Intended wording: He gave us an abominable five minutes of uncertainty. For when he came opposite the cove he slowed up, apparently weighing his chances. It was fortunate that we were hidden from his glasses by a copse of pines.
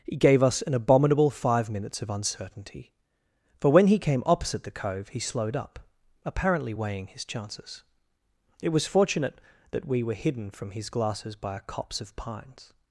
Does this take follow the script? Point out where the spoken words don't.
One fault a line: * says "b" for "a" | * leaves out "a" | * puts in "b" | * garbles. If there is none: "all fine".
all fine